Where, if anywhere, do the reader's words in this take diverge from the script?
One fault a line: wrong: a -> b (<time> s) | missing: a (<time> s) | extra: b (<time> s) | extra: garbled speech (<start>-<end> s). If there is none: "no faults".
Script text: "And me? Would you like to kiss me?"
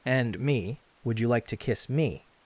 no faults